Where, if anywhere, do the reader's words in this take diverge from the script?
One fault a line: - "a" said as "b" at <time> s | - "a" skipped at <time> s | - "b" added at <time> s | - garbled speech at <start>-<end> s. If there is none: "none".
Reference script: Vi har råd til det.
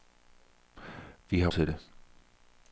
- "råd" skipped at 1.5 s